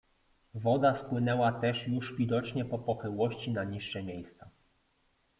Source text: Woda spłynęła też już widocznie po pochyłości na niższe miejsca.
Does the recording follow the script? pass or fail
pass